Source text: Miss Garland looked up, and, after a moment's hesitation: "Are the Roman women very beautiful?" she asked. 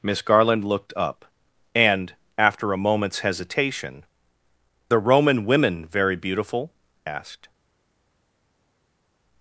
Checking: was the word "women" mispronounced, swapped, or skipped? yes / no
no